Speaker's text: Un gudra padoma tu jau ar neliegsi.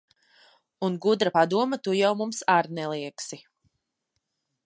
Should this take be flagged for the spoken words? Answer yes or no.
yes